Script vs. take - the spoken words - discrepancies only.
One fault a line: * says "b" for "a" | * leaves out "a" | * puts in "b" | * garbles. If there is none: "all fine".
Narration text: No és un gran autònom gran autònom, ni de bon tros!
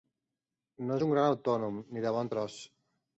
* leaves out "gran autònom"